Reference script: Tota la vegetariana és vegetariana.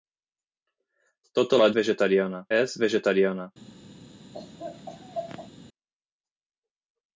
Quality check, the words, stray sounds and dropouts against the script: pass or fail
fail